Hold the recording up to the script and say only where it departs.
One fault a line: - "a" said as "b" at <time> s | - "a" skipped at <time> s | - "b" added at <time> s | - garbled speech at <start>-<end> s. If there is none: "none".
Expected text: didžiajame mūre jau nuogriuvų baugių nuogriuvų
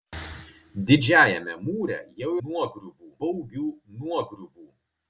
none